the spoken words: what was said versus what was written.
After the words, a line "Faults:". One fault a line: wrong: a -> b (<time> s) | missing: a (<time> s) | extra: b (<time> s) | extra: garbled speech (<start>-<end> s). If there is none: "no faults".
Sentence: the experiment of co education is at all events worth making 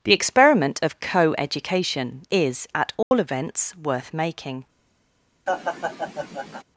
the experiment of co education is at all events worth making
Faults:
no faults